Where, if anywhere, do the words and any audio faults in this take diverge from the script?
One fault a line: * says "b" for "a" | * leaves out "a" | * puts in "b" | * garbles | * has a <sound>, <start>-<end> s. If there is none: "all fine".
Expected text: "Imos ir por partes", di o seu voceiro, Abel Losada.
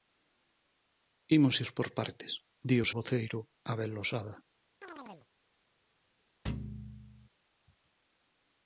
* leaves out "seu"
* has a chirp, 4.8-5.3 s
* has a thud, 6.4-7.3 s